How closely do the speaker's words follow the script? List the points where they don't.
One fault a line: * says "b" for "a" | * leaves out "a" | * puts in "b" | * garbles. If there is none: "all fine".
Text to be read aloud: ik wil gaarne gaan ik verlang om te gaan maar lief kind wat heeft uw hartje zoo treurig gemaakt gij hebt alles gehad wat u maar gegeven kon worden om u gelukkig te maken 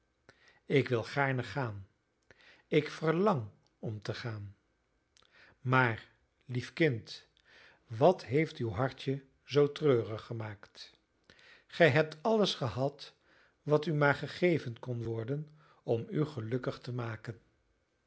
all fine